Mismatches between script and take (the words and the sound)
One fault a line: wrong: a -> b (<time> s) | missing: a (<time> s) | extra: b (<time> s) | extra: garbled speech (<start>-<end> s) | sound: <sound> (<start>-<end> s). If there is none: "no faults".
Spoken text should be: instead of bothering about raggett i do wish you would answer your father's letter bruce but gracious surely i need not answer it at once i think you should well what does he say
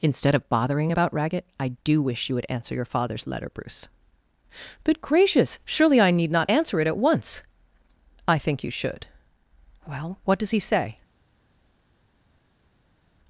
no faults